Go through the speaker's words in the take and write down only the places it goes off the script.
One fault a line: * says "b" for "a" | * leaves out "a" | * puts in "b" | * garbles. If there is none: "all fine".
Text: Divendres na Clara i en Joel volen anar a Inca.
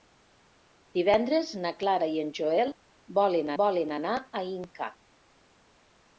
* puts in "volen"